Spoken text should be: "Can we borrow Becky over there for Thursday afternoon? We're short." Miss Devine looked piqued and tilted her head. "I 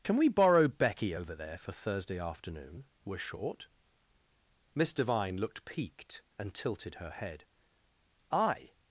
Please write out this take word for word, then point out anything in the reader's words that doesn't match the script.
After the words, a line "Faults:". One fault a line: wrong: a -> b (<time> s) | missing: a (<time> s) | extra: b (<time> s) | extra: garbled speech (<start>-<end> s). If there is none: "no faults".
"Can we borrow Becky over there for Thursday afternoon? We're short." Miss Devine looked piqued and tilted her head. "I
Faults:
no faults